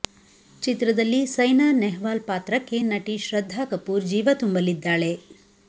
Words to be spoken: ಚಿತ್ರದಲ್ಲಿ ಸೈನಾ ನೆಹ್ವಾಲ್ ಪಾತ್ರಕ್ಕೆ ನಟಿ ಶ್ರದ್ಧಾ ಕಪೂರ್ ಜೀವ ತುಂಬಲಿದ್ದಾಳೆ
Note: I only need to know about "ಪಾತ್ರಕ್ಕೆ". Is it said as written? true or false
true